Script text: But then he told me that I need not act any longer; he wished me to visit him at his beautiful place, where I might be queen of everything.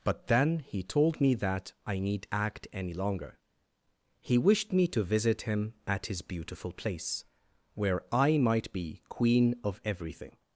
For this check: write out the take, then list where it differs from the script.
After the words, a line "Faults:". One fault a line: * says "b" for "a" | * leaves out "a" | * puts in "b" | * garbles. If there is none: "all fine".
But then he told me that I need act any longer; he wished me to visit him at his beautiful place, where I might be queen of everything.
Faults:
* leaves out "not"